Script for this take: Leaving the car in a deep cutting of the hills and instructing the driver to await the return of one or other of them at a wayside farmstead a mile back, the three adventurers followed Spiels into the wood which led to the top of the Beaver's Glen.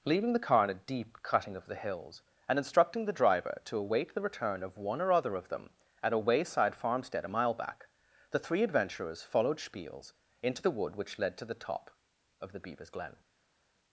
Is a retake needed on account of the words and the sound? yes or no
no